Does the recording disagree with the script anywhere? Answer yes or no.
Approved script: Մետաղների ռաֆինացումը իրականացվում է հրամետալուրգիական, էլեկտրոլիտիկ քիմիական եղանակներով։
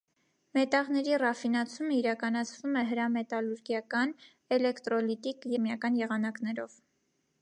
no